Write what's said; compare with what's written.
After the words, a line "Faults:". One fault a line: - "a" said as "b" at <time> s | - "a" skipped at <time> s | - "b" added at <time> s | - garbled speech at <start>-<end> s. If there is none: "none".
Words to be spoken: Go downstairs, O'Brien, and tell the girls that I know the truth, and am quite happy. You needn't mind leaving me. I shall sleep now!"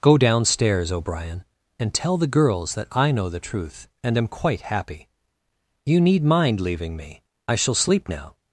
Go downstairs, O'Brien, and tell the girls that I know the truth, and am quite happy. You need mind leaving me. I shall sleep now!"
Faults:
- "needn't" said as "need" at 6.0 s